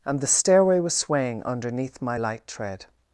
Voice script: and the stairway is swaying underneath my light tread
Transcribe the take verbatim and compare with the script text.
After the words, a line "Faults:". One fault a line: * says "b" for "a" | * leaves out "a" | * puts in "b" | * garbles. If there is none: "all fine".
and the stairway was swaying underneath my light tread
Faults:
* says "was" for "is"